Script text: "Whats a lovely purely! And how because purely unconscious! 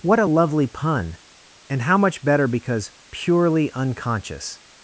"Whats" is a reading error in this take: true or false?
true